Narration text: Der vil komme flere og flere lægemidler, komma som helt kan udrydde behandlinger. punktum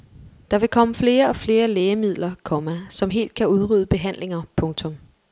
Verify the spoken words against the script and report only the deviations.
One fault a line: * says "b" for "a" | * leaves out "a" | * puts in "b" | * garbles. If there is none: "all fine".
all fine